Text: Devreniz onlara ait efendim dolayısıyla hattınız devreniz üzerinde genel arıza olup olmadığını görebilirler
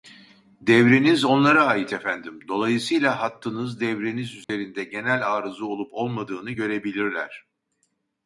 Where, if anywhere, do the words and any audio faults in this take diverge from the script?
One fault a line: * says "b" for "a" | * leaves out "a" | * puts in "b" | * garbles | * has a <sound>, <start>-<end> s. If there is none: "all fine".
* has a dropout, 4.4-4.5 s